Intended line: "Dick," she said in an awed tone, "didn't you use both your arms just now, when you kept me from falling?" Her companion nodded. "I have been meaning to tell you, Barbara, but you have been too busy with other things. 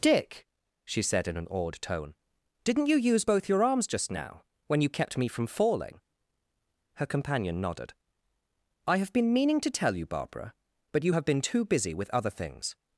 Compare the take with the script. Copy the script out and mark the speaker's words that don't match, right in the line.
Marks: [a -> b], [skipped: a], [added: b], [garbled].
"Dick," she said in an awed tone, "didn't you use both your arms just now, when you kept me from falling?" Her companion nodded. "I have been meaning to tell you, Barbara, but you have been too busy with other things.